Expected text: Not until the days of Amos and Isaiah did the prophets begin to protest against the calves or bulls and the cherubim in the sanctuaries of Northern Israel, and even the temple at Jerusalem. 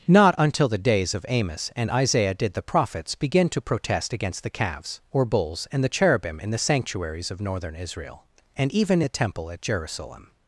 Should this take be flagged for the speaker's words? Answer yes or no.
no